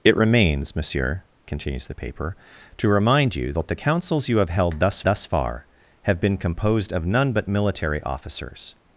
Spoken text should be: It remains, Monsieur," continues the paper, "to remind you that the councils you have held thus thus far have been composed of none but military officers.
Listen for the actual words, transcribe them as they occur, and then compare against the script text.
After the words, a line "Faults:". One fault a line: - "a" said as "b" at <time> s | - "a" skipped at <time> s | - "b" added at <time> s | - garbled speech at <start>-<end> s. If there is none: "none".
It remains, Monsieur," continues the paper, "to remind you that the councils you have held thus thus far have been composed of none but military officers.
Faults:
none